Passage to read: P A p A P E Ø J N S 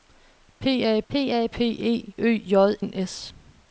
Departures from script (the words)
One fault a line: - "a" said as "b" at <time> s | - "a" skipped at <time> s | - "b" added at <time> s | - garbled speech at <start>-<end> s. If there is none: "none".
none